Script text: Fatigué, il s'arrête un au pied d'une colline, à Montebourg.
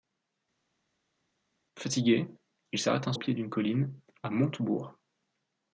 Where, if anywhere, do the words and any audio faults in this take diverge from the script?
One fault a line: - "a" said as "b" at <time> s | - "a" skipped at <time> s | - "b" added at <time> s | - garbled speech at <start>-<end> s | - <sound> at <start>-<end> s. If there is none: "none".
none